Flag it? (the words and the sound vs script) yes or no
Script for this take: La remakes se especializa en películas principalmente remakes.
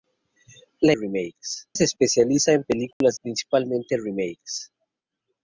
yes